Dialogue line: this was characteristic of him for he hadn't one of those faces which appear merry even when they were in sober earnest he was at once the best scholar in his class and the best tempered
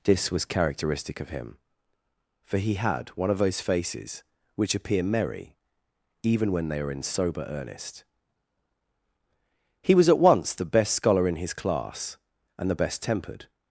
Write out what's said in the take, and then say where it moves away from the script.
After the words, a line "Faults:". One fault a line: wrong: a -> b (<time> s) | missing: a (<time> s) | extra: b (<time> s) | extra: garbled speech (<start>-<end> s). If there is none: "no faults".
this was characteristic of him for he had one of those faces which appear merry even when they are in sober earnest he was at once the best scholar in his class and the best tempered
Faults:
wrong: hadn't -> had (2.7 s)
wrong: were -> are (6.8 s)